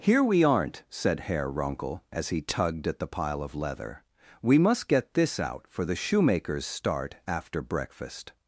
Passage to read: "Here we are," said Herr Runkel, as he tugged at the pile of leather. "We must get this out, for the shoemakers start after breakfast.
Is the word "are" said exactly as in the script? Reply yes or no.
no